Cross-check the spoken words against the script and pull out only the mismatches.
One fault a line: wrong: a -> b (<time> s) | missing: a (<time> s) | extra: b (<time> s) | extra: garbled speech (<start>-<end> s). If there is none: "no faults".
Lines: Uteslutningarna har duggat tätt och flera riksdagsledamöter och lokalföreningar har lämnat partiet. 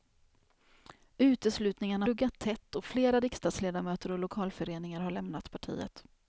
missing: har (2.1 s)